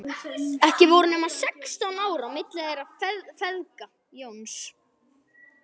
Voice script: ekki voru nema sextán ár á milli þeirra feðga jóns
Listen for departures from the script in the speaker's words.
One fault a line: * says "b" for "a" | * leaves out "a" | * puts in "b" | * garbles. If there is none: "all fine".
all fine